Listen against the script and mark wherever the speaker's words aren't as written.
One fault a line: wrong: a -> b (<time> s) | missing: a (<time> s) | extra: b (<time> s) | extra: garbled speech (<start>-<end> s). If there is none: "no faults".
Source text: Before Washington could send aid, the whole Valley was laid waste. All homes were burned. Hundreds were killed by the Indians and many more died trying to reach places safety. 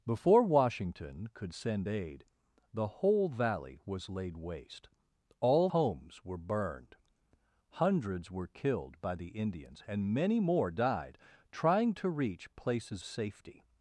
no faults